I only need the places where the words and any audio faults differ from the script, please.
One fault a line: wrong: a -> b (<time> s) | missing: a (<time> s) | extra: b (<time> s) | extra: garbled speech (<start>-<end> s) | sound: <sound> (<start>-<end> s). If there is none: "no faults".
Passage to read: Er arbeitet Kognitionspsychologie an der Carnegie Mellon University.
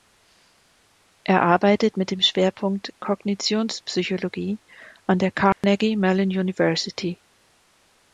extra: mit dem Schwerpunkt (2.0 s)
sound: dropout (5.5-5.6 s)